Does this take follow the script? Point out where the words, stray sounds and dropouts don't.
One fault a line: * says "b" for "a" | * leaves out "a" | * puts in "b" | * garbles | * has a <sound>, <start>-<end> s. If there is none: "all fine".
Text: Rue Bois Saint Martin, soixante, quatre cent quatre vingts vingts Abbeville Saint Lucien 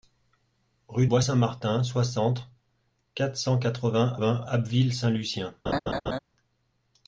* has a laugh, 5.7-6.2 s